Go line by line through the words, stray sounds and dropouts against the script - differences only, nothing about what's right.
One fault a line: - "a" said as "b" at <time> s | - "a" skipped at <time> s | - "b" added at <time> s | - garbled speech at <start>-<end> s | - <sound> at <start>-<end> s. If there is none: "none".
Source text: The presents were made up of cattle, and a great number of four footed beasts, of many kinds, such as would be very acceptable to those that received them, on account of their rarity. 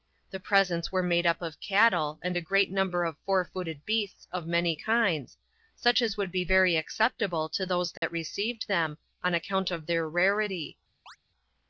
- dropout at 8.0-8.0 s
- chirp at 11.1-11.2 s